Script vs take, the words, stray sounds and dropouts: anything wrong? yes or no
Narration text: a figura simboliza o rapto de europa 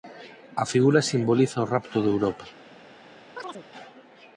yes